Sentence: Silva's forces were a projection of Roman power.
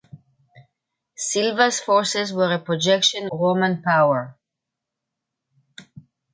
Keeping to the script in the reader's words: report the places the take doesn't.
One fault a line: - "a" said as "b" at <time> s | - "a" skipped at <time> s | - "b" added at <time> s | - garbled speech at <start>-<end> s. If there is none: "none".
- "of" skipped at 3.3 s